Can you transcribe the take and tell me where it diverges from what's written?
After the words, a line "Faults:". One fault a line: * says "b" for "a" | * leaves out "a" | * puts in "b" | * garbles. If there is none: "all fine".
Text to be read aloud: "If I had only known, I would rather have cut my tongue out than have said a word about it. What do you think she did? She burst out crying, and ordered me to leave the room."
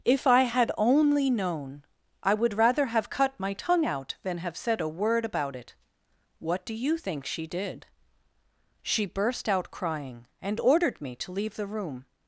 "If I had only known, I would rather have cut my tongue out than have said a word about it. What do you think she did? She burst out crying, and ordered me to leave the room."
Faults:
all fine